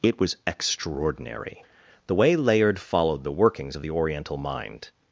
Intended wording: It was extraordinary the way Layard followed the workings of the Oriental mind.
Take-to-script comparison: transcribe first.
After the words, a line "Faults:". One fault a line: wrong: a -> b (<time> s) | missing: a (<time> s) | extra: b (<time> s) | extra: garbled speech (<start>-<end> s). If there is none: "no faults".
It was extraordinary the way Layard followed the workings of the Oriental mind.
Faults:
no faults